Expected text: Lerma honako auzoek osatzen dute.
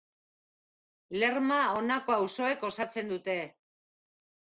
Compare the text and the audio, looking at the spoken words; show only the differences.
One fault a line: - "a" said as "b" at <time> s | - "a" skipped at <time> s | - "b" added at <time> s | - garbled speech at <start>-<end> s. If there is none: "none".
none